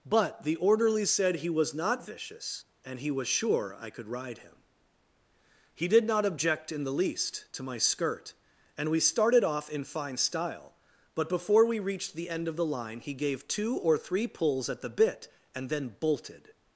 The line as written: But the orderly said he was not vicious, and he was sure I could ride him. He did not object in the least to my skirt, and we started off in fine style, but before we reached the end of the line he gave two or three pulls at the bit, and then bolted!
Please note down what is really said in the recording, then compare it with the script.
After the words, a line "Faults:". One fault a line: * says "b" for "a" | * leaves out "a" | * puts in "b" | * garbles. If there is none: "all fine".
But the orderly said he was not vicious, and he was sure I could ride him. He did not object in the least to my skirt, and we started off in fine style, but before we reached the end of the line he gave two or three pulls at the bit, and then bolted!
Faults:
all fine